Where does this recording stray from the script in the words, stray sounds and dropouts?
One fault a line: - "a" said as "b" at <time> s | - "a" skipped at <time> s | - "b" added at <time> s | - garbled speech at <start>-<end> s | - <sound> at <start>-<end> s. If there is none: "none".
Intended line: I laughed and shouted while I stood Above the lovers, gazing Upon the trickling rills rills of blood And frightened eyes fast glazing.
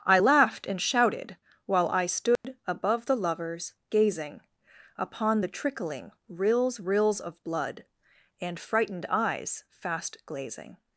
- dropout at 2.4-2.4 s